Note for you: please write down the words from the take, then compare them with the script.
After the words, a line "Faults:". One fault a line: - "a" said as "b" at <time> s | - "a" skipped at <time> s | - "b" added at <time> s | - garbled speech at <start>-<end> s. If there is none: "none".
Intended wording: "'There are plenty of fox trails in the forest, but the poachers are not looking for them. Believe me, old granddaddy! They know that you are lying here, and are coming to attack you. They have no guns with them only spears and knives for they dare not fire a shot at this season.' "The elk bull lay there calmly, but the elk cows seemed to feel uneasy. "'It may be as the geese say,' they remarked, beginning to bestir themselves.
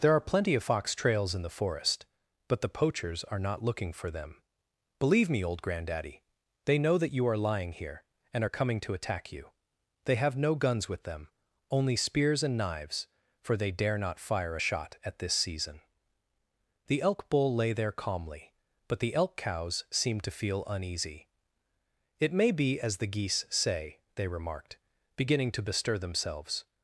"'There are plenty of fox trails in the forest, but the poachers are not looking for them. Believe me, old granddaddy! They know that you are lying here, and are coming to attack you. They have no guns with them only spears and knives for they dare not fire a shot at this season.' "The elk bull lay there calmly, but the elk cows seemed to feel uneasy. "'It may be as the geese say,' they remarked, beginning to bestir themselves.
Faults:
none